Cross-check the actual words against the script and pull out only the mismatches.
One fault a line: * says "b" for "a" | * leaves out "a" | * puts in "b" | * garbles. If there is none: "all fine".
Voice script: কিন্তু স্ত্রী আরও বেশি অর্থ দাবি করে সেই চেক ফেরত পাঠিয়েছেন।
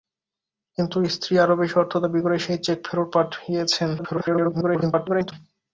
* garbles